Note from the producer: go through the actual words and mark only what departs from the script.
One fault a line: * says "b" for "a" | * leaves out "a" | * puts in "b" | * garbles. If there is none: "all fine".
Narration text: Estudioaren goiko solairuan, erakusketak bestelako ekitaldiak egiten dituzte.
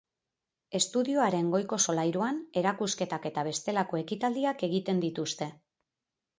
* puts in "eta"